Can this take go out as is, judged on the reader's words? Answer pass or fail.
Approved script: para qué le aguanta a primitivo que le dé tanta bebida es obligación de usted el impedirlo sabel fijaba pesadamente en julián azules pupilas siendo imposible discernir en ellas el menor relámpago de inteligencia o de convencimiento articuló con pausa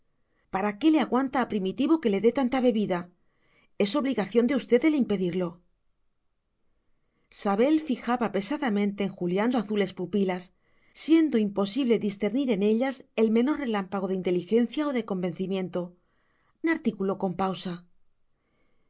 pass